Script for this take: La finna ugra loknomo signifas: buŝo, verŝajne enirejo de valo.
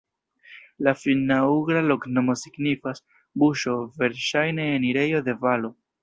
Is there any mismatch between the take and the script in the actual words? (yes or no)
no